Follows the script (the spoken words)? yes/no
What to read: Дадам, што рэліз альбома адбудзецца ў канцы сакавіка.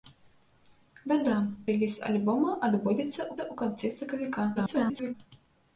no